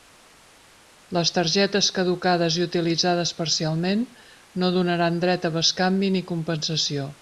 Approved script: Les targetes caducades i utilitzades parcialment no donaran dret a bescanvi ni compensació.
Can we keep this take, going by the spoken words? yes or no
yes